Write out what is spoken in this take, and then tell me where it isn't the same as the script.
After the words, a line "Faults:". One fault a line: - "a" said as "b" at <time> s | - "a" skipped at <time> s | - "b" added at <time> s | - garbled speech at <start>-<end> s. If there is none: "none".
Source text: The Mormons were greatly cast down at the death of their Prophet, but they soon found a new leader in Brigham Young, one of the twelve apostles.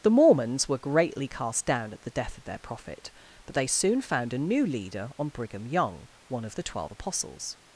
The Mormons were greatly cast down at the death of their Prophet, but they soon found a new leader on Brigham Young, one of the twelve apostles.
Faults:
- "in" said as "on" at 5.2 s